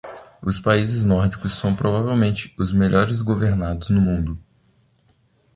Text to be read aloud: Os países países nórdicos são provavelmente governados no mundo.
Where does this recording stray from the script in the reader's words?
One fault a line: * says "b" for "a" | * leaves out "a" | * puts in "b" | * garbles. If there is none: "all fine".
* leaves out "países"
* puts in "os melhores"